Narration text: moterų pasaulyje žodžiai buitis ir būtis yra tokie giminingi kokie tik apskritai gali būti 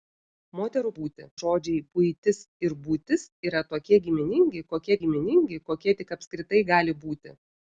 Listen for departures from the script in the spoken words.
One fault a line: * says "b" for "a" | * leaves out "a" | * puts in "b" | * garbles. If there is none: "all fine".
* says "būti" for "pasaulyje"
* puts in "giminingi kokie"